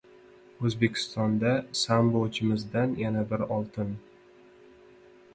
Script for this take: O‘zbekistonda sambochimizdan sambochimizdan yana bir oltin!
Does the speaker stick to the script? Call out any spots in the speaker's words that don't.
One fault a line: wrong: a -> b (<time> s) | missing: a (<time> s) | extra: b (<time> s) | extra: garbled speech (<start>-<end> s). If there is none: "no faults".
missing: sambochimizdan (2.9 s)